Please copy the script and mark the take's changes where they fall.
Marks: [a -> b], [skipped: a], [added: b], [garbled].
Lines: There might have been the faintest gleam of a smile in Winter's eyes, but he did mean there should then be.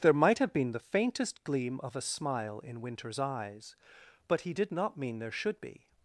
There might have been the faintest gleam of a smile in Winter's eyes, but he did [added: not] mean there should [skipped: then] be.